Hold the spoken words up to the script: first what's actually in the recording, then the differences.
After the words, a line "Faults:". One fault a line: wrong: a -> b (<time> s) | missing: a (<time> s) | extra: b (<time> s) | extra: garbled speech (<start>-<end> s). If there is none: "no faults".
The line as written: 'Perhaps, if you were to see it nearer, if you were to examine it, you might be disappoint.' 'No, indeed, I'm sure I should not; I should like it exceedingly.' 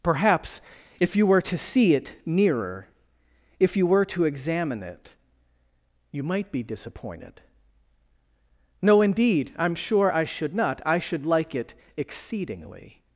'Perhaps, if you were to see it nearer, if you were to examine it, you might be disappointed.' 'No, indeed, I'm sure I should not; I should like it exceedingly.'
Faults:
wrong: disappoint -> disappointed (6.6 s)